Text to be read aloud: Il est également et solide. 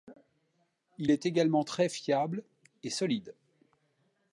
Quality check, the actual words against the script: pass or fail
fail